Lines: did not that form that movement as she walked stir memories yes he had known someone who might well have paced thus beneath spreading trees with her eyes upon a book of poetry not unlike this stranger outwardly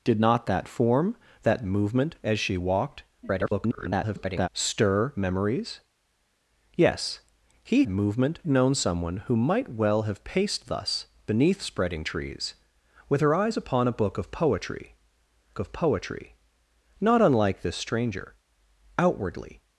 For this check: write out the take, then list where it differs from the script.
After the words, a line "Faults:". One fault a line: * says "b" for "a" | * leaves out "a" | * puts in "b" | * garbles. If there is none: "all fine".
did not that form that movement as she walked [garbled] stir memories yes he movement known someone who might well have paced thus beneath spreading trees with her eyes upon a book of poetry of poetry not unlike this stranger outwardly
Faults:
* garbles
* says "movement" for "had"
* puts in "of poetry"